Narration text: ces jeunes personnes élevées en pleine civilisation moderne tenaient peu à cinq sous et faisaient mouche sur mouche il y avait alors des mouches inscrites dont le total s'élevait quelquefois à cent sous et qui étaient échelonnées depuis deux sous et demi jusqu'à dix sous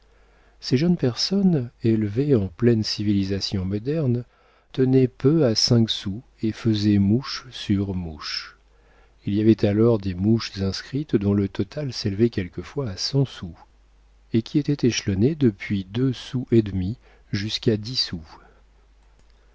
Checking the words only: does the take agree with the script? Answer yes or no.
yes